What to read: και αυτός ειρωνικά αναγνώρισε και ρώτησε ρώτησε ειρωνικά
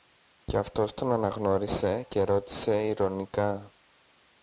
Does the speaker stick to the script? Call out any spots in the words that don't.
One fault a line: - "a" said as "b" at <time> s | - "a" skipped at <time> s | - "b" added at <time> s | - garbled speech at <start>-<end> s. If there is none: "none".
- "ειρωνικά" said as "τον" at 0.9 s
- "ρώτησε" skipped at 2.9 s